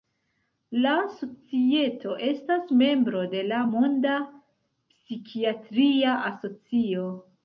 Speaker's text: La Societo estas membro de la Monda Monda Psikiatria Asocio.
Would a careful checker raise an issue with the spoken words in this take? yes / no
yes